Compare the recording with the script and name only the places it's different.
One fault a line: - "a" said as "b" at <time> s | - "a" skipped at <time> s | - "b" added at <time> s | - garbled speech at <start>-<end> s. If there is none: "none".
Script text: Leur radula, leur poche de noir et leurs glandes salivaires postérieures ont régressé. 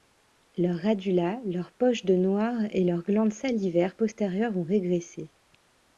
none